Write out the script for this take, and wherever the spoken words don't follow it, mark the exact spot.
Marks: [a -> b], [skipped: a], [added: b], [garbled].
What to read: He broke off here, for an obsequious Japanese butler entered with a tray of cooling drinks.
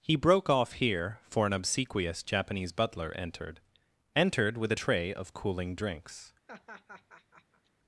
He broke off here, for an obsequious Japanese butler entered [added: entered] with a tray of cooling drinks.